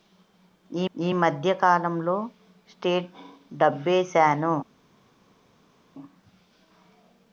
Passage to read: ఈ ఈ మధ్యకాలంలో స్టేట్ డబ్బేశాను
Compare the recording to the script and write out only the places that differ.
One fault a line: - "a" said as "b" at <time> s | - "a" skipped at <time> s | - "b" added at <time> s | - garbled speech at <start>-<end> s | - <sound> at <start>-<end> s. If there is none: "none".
none